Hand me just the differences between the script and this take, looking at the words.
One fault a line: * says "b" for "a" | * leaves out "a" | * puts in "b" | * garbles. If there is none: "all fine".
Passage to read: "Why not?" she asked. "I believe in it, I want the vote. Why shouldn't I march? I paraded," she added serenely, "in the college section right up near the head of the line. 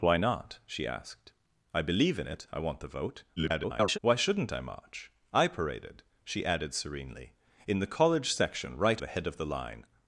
* garbles
* leaves out "up near"